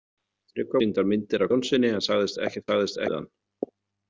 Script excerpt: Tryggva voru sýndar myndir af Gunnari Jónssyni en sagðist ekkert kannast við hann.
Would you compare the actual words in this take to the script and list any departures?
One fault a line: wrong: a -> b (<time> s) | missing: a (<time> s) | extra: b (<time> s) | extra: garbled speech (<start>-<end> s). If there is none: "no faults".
missing: voru (0.8 s)
missing: Gunnari (1.5 s)
wrong: kannast -> sagðist (2.7 s)